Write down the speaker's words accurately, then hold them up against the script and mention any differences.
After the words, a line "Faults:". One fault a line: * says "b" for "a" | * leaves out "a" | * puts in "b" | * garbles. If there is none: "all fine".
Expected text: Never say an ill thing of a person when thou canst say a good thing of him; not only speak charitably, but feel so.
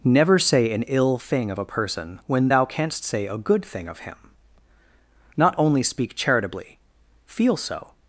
Never say an ill thing of a person when thou canst say a good thing of him; not only speak charitably, feel so.
Faults:
* leaves out "but"